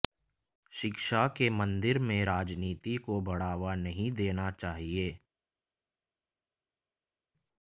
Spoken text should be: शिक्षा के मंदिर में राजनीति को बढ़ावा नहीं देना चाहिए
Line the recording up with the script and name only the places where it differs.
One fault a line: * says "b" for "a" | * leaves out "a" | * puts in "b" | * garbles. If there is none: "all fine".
all fine